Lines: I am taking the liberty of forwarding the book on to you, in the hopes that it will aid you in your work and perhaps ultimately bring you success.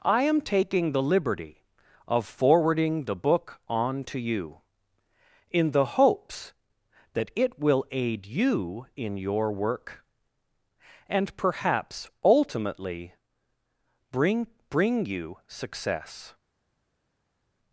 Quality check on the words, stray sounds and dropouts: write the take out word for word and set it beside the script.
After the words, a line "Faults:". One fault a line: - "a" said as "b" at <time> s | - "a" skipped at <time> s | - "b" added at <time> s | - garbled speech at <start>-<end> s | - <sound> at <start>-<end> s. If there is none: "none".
I am taking the liberty of forwarding the book on to you, in the hopes that it will aid you in your work and perhaps ultimately bring bring you success.
Faults:
- "bring" added at 14.7 s